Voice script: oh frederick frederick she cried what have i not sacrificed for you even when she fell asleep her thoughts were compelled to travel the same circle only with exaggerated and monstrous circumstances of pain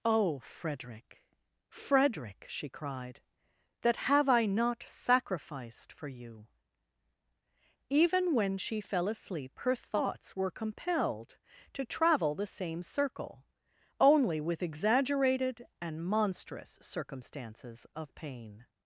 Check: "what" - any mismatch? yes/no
yes